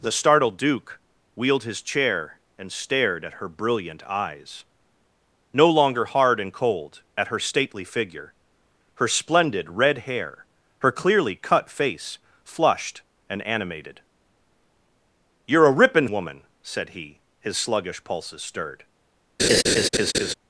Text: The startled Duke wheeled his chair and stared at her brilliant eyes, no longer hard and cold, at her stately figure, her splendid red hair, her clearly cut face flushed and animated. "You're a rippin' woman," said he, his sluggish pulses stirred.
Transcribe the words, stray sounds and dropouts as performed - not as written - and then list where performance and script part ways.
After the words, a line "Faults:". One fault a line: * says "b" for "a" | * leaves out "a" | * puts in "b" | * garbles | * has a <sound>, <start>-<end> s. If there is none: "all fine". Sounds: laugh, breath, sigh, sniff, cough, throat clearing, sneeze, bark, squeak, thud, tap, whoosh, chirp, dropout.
The startled Duke wheeled his chair and stared at her brilliant eyes, no longer hard and cold, at her stately figure, her splendid red hair, her clearly cut face flushed and animated. "You're a rippin' woman," said he, his sluggish pulses stirred.
Faults:
* has a laugh, 19.4-20.3 s